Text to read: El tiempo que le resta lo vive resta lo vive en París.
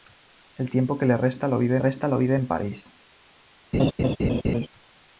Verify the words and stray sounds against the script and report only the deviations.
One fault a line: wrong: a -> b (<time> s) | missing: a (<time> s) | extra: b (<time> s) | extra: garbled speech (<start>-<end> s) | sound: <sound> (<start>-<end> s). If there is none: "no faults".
sound: laugh (3.7-4.7 s)